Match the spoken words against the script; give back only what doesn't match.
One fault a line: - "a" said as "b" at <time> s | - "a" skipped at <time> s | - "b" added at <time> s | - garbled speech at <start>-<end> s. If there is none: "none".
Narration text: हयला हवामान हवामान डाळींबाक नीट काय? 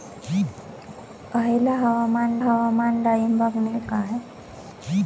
none